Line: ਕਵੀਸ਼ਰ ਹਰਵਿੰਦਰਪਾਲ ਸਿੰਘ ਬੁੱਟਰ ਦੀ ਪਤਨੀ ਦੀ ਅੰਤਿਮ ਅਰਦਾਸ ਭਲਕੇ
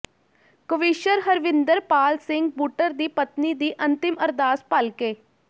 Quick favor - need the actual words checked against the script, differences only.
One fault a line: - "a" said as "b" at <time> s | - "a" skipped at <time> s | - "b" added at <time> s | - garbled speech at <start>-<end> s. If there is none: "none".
none